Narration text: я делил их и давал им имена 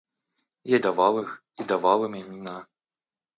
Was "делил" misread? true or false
true